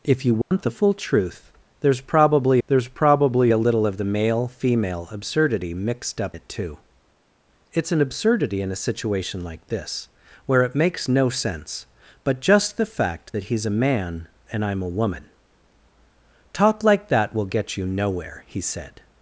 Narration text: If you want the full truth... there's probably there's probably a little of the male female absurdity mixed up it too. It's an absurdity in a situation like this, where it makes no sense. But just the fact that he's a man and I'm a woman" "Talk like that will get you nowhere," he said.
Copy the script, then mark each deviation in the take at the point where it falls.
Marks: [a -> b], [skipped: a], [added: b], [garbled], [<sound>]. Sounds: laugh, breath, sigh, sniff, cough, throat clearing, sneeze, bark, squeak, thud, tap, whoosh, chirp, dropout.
If you want [dropout] the full truth... there's probably there's probably a little of the male female absurdity mixed up it too. It's an absurdity in a situation like this, where it makes no sense. But just the fact that he's a man and I'm a woman" "Talk like that will get you nowhere," he said.